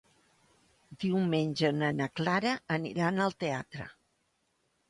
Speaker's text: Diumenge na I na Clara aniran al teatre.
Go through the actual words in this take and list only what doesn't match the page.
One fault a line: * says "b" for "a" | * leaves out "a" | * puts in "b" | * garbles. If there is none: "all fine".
all fine